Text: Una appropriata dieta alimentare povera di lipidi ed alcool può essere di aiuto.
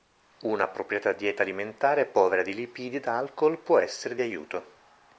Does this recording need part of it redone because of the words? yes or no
no